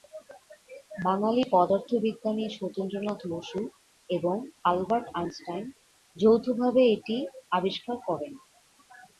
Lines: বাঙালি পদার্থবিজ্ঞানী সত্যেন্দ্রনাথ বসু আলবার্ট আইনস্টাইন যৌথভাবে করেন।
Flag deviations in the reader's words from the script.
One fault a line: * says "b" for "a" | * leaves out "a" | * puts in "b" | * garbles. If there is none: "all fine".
* puts in "এবং"
* puts in "এটি আবিষ্কার"